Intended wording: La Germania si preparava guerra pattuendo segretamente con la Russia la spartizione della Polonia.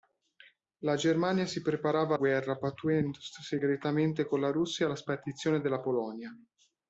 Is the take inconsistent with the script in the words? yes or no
no